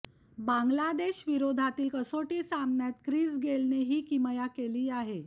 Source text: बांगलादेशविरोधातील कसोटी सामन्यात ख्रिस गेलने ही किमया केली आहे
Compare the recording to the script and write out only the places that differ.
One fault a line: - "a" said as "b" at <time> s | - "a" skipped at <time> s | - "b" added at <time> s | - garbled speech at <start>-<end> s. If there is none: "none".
none